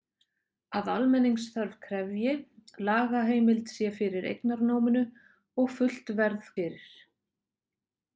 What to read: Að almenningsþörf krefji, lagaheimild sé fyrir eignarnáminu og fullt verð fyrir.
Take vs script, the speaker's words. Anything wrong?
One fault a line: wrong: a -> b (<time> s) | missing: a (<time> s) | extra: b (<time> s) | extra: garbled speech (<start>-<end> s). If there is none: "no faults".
no faults